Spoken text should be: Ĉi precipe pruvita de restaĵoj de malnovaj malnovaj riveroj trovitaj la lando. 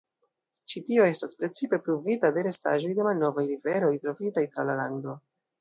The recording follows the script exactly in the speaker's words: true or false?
false